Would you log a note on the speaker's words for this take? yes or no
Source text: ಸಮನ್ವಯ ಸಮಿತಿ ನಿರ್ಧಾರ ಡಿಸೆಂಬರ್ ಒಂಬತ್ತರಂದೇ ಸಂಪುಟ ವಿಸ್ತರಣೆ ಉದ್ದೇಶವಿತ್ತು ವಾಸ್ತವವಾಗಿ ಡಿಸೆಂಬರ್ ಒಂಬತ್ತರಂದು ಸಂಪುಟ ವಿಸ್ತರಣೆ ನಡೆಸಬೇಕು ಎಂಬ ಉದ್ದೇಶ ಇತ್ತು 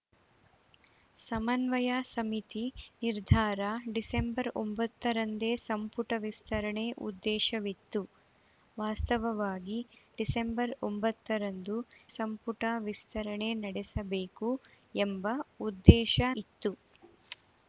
no